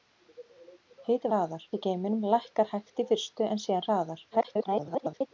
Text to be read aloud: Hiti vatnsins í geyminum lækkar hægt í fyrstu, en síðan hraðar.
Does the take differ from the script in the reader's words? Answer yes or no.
yes